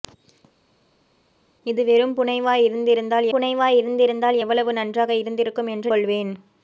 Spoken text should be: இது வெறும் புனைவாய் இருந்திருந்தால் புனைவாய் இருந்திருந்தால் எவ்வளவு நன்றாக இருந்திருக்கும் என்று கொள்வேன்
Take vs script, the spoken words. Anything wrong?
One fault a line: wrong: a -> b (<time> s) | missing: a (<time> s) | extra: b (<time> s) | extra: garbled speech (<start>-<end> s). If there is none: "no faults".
no faults